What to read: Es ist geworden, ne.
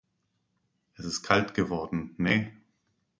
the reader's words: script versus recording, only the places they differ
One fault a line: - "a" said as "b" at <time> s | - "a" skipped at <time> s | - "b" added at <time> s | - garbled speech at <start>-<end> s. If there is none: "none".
- "kalt" added at 1.2 s